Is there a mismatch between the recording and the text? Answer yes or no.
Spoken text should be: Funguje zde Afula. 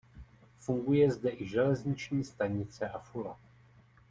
yes